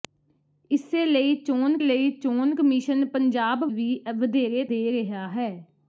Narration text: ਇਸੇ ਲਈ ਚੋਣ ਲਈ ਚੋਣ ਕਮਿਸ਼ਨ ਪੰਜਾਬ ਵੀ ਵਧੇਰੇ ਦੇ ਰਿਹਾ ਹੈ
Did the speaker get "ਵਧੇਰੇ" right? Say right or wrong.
right